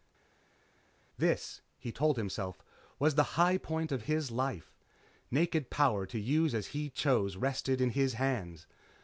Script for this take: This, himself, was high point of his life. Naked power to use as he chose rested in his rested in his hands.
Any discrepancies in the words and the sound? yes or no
yes